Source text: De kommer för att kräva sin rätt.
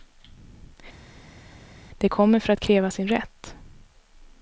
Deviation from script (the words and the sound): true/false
false